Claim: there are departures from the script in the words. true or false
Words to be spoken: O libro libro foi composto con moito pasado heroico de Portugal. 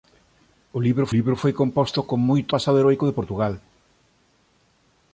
false